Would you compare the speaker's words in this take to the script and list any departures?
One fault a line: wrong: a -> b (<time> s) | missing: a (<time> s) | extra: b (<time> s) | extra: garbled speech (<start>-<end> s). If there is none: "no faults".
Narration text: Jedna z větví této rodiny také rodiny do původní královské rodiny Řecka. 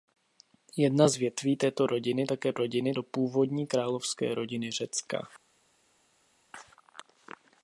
no faults